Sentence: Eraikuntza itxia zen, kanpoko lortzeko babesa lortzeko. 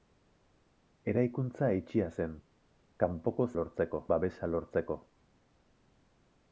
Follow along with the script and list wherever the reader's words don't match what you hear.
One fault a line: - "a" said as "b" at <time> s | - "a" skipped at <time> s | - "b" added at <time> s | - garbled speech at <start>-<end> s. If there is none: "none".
none